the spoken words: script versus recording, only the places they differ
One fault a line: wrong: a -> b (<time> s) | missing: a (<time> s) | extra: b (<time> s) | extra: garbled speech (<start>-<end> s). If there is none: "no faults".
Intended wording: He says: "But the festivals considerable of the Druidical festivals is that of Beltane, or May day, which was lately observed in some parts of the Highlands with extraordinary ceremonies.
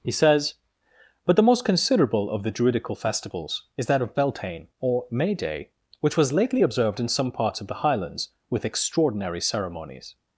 wrong: festivals -> most (1.4 s)